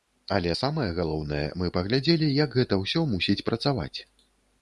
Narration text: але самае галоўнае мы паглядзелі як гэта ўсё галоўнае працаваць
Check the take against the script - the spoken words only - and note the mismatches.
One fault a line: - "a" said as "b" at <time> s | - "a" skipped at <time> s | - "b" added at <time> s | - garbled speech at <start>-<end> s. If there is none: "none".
- "галоўнае" said as "мусіць" at 3.2 s